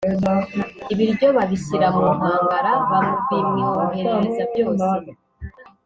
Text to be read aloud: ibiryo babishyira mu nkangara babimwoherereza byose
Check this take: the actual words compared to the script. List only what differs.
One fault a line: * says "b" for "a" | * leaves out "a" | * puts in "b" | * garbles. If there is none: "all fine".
all fine